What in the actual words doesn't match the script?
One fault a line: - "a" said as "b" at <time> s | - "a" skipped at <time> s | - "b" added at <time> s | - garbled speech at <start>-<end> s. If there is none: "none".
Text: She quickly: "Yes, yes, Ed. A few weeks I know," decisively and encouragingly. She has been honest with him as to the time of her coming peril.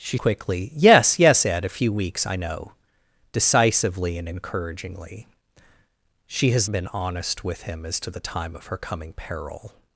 none